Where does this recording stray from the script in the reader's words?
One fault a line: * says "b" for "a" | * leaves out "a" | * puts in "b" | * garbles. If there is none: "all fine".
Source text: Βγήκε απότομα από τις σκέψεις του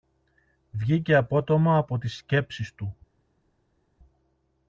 all fine